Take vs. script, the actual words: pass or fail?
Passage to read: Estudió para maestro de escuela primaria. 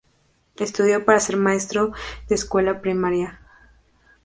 fail